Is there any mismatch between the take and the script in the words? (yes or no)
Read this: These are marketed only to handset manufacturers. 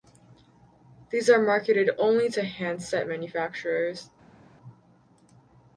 no